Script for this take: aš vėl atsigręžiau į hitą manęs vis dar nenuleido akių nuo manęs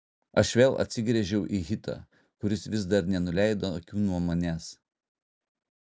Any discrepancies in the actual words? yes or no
yes